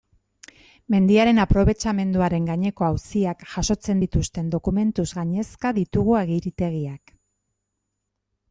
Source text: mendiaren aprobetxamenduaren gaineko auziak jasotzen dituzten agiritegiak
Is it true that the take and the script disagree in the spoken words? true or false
true